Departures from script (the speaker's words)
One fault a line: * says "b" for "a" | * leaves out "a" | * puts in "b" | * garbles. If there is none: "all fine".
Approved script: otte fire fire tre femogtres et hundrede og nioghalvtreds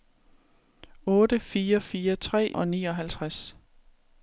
* leaves out "femogtres et hundrede"